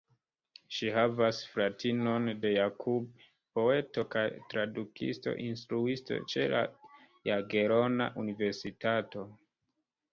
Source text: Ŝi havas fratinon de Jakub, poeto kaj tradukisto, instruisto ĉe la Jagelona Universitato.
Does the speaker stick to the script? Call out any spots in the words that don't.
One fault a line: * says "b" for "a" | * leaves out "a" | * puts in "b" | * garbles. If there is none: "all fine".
all fine